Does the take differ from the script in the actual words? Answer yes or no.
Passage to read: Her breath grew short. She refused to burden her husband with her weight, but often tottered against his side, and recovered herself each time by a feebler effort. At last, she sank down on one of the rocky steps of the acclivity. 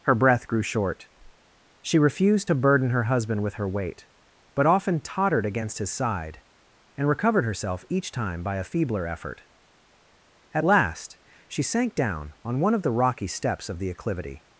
no